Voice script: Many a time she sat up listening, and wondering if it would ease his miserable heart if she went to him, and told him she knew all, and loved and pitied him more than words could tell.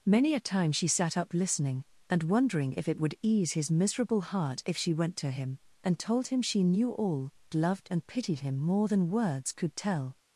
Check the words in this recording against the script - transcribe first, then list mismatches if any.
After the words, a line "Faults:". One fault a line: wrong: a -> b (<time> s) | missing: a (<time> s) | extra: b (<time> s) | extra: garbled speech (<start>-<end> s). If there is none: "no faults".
Many a time she sat up listening, and wondering if it would ease his miserable heart if she went to him, and told him she knew all, loved and pitied him more than words could tell.
Faults:
missing: and (7.3 s)